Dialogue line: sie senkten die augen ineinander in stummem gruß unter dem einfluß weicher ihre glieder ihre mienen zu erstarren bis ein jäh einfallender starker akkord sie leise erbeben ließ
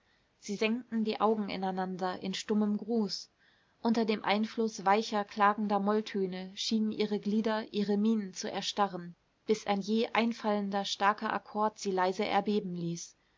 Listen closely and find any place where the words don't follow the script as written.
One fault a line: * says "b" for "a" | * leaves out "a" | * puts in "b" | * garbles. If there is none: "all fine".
* puts in "klagender molltöne schienen"